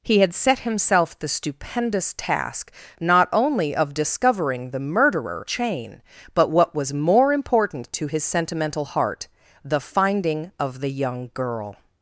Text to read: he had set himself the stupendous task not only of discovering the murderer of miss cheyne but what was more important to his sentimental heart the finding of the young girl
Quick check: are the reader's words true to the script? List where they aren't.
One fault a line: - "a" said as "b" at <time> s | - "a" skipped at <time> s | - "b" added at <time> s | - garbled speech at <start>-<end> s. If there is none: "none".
- "of miss" skipped at 5.5 s